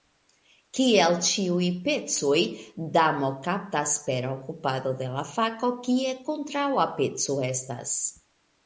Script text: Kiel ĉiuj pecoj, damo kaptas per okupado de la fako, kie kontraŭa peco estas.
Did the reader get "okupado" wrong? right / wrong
right